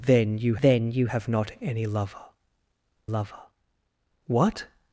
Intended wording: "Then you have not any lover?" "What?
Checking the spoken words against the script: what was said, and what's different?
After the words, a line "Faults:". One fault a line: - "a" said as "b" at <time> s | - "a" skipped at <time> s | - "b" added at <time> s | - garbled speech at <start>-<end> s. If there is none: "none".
"Then you then you have not any lover lover?" "What?
Faults:
- "then you" added at 0.6 s
- "lover" added at 3.0 s